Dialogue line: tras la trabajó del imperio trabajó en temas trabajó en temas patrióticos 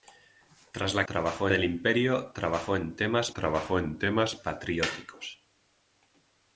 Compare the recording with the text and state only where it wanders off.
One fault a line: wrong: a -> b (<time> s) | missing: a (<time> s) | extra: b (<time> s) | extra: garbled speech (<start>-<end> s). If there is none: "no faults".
no faults